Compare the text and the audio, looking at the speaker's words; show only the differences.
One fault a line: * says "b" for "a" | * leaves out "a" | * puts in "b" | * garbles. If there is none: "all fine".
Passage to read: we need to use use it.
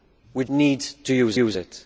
all fine